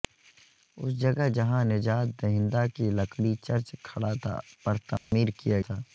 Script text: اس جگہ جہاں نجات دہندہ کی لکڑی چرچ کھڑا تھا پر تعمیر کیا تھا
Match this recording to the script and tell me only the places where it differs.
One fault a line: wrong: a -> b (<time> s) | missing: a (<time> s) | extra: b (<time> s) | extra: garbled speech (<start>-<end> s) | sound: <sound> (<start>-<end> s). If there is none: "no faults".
sound: dropout (5.0-5.1 s)